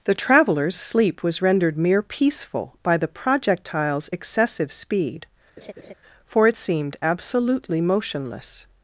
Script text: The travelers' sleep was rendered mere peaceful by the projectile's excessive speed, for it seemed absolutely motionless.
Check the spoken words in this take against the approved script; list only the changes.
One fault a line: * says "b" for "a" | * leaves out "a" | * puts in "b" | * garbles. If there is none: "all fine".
all fine